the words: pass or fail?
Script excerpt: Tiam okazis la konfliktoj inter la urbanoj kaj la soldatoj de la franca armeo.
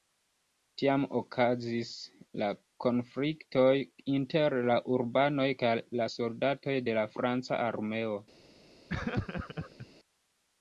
pass